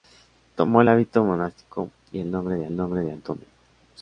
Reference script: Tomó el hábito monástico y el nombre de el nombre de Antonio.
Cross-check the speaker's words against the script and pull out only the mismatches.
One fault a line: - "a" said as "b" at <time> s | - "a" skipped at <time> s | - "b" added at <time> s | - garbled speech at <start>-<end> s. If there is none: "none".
none